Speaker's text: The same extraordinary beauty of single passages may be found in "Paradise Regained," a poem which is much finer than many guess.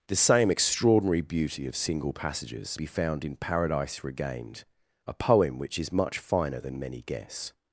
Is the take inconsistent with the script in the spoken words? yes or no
yes